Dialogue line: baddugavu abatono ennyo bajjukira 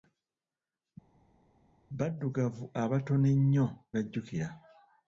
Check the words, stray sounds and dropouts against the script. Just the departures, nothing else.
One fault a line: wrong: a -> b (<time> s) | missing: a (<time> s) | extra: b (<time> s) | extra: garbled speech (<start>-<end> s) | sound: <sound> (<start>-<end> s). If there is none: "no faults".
no faults